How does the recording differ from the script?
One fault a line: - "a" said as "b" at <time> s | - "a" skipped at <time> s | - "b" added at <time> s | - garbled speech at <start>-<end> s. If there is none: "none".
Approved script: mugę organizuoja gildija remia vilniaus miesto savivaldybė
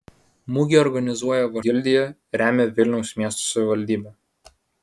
none